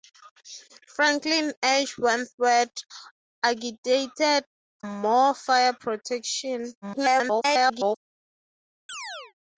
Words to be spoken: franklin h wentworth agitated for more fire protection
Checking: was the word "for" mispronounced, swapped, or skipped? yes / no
yes